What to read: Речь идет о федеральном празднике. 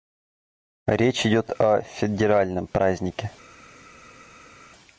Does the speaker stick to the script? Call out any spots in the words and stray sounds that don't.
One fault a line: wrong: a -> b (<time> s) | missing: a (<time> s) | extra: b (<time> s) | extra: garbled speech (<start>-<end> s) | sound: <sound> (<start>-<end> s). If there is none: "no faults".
no faults